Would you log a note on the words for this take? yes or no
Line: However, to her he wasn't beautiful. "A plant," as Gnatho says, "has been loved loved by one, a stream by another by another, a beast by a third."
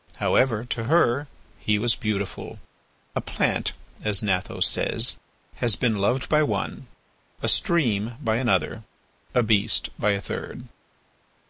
yes